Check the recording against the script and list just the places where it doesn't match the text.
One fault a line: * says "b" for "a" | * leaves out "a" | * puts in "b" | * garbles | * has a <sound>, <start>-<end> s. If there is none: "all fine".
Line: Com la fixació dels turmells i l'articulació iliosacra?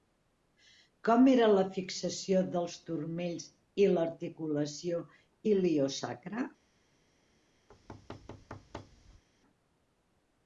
* puts in "era"
* has a thud, 7.7-9.2 s